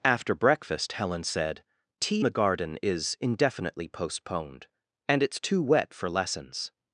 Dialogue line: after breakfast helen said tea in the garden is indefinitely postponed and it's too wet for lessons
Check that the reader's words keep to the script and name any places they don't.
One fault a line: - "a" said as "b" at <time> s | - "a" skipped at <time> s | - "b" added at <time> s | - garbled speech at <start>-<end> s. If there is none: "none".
- "in" skipped at 2.2 s